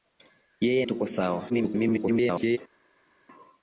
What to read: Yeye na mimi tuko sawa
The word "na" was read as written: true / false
false